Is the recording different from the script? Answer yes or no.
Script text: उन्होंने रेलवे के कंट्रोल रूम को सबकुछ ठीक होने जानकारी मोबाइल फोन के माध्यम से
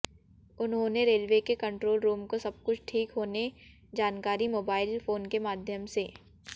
no